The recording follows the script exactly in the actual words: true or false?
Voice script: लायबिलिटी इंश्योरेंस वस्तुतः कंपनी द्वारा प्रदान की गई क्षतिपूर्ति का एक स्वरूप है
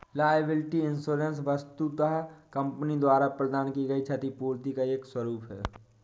true